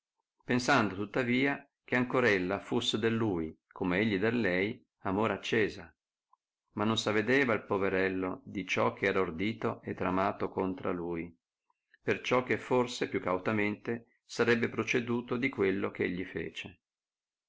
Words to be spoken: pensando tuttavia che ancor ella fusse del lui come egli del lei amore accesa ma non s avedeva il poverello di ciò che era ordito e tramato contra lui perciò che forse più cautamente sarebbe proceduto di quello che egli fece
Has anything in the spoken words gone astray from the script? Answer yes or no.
no